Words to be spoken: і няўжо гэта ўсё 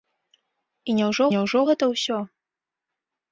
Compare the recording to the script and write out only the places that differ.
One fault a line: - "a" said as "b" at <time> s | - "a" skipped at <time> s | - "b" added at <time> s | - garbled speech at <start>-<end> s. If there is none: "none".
- "няўжо" added at 1.3 s